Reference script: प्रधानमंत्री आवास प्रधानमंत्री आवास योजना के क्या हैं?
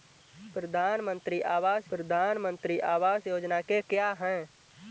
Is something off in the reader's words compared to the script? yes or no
no